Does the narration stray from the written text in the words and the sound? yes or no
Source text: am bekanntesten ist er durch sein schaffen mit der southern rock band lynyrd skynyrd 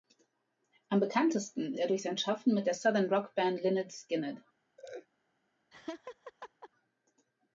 yes